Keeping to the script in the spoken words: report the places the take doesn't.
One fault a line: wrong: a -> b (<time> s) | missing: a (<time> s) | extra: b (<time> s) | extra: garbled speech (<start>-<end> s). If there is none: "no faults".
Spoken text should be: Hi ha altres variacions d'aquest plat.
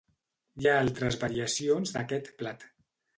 no faults